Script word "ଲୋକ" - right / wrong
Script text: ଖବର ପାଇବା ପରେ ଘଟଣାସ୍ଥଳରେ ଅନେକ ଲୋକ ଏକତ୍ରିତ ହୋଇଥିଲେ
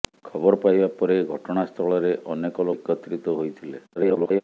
wrong